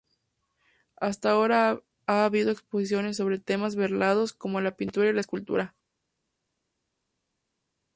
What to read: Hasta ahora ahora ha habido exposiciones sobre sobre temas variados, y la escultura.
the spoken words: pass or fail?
fail